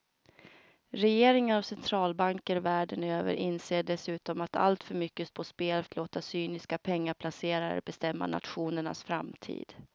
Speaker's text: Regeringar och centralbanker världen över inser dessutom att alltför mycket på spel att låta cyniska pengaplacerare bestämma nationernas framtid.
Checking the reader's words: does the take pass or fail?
pass